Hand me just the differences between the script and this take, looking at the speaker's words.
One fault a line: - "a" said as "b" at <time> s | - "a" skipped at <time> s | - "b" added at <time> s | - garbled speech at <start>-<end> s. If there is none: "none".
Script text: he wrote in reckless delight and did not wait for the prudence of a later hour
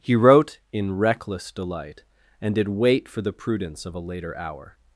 - "not" skipped at 2.7 s